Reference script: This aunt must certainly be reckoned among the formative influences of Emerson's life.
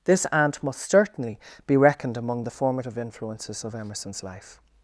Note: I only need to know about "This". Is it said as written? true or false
true